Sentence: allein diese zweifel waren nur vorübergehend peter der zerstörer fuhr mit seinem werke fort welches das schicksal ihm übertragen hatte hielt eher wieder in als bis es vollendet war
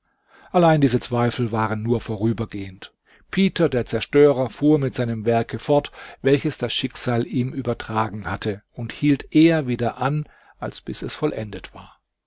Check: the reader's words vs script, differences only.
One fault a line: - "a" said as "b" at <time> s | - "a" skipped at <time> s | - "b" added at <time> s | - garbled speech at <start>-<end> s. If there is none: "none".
- "und" added at 8.7 s
- "in" said as "an" at 10.0 s